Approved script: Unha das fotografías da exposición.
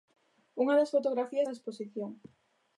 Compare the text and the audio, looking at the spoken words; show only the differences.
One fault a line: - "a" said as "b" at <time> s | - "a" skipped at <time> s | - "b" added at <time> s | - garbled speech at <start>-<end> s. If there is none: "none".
none